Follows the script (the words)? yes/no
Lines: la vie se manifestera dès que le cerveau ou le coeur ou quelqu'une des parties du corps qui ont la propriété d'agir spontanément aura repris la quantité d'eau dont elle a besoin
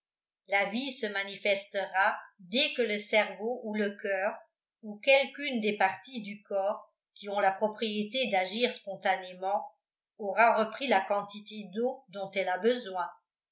yes